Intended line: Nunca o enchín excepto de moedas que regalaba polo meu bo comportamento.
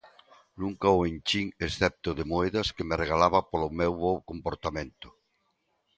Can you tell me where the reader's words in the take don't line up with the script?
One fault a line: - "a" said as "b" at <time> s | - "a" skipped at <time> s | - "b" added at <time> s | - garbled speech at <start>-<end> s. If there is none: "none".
- "me" added at 2.9 s